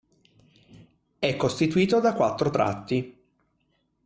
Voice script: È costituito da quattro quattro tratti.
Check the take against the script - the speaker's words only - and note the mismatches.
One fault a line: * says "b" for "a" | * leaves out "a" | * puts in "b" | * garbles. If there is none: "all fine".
* leaves out "quattro"